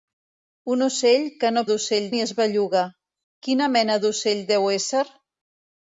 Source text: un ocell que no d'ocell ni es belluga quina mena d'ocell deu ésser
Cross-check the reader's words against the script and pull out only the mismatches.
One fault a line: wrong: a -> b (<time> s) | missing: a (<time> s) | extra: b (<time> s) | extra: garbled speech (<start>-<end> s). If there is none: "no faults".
no faults